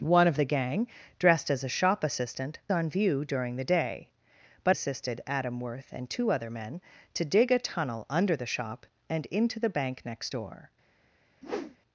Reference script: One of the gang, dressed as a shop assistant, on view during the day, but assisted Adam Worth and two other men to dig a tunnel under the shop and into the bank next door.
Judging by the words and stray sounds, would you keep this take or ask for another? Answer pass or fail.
fail